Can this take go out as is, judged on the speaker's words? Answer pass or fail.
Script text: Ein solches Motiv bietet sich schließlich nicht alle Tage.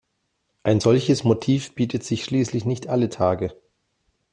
pass